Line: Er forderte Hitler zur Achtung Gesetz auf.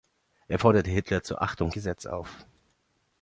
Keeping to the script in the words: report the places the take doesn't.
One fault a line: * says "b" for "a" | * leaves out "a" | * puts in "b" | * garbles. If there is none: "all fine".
all fine